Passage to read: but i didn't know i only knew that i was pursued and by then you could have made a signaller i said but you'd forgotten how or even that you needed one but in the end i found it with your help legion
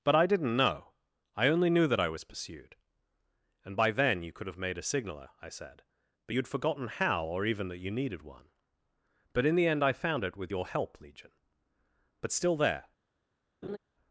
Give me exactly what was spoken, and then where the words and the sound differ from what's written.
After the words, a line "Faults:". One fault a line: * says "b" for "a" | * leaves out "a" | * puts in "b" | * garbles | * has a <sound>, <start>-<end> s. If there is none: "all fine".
but i didn't know i only knew that i was pursued and by then you could have made a signaller i said but you'd forgotten how or even that you needed one but in the end i found it with your help legion but still there
Faults:
* puts in "but still there"
* has a laugh, 13.6-13.8 s